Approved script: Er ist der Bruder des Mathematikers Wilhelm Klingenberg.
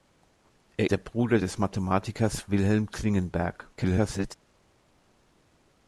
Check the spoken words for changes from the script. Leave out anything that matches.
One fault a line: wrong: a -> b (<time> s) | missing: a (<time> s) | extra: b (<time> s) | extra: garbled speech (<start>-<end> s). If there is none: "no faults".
missing: ist (0.9 s)
extra: garbled speech (3.8-4.3 s)